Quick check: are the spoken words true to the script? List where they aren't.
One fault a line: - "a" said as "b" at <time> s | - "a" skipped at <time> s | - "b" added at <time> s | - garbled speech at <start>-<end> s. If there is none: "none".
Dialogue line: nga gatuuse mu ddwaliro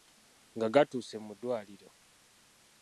none